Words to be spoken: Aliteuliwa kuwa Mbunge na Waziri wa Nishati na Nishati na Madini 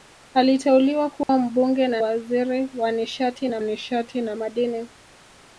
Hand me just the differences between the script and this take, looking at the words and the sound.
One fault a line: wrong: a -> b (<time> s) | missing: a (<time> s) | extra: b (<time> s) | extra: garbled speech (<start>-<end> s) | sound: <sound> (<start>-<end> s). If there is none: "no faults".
sound: dropout (1.2-1.3 s)